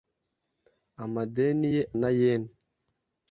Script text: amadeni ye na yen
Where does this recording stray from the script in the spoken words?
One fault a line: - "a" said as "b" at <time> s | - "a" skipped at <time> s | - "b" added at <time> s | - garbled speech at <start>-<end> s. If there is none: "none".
none